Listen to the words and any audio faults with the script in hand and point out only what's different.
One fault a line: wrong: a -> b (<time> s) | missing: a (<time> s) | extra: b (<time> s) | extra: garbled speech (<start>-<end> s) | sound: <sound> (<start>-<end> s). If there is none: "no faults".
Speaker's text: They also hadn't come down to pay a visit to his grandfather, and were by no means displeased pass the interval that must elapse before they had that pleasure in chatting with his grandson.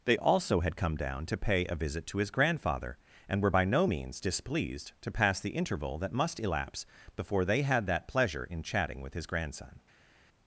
wrong: hadn't -> had (0.6 s)
extra: to (5.0 s)